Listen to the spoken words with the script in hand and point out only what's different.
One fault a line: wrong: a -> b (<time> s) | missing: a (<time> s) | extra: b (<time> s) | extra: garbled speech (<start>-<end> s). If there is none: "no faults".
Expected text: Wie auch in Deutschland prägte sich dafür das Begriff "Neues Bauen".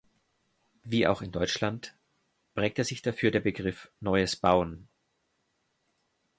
wrong: das -> der (3.3 s)